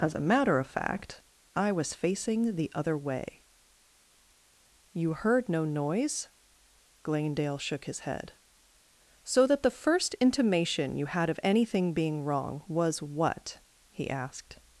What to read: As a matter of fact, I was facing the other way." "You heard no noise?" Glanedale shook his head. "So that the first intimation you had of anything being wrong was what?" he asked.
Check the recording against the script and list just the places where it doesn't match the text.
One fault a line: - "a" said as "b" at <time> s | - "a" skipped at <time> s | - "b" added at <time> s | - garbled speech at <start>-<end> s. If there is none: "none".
none